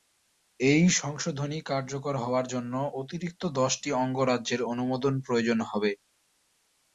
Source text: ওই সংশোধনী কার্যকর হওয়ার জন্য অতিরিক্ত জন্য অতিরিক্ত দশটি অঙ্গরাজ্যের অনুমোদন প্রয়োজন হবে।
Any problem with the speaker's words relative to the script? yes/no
yes